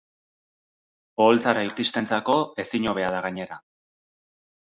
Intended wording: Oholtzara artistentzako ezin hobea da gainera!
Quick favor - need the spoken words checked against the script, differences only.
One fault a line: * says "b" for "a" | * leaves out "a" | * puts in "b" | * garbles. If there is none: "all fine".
all fine